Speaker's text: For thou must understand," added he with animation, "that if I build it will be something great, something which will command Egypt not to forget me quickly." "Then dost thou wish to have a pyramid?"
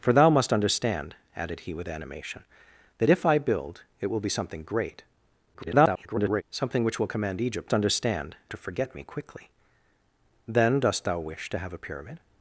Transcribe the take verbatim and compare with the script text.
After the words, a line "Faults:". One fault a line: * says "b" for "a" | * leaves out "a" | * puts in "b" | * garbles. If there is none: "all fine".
For thou must understand," added he with animation, "that if I build it will be something great, [garbled] something which will command Egypt understand to forget me quickly." "Then dost thou wish to have a pyramid?"
Faults:
* garbles
* says "understand" for "not"